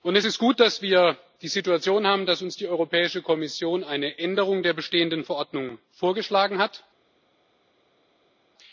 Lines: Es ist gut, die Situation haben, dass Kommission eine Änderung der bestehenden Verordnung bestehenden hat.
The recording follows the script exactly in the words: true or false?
false